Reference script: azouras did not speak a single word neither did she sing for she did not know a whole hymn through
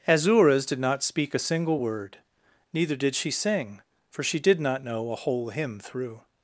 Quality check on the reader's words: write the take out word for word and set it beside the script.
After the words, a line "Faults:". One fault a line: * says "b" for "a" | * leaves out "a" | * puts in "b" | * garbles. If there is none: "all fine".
azouras did not speak a single word neither did she sing for she did not know a whole hymn through
Faults:
all fine